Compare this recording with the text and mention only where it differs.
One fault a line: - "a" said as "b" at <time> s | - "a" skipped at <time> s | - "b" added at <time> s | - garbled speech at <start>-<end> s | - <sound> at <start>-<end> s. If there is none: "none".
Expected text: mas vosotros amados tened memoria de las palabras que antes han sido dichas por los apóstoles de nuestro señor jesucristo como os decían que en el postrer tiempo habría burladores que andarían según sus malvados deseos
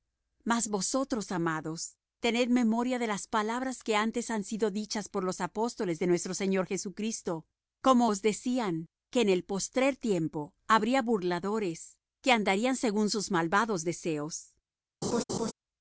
- laugh at 15.0-15.5 s